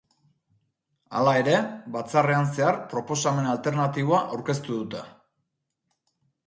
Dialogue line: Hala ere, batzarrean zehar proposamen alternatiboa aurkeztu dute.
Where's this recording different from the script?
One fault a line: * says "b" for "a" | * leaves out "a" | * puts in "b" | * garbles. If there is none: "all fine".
all fine